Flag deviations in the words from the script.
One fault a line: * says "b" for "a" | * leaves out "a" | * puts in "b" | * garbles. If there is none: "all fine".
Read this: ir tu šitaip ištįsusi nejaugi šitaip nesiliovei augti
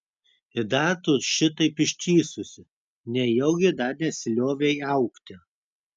* puts in "dar"
* says "dar" for "šitaip"